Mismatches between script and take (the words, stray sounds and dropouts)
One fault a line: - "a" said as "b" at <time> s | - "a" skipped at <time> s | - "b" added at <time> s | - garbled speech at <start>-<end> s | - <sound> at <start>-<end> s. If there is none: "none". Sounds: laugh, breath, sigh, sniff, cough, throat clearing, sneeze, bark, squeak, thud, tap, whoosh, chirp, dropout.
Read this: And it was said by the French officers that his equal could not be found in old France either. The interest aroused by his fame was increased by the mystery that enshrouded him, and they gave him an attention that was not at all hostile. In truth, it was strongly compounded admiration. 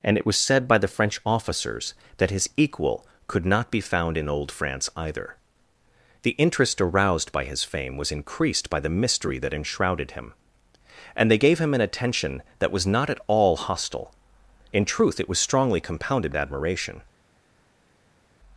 none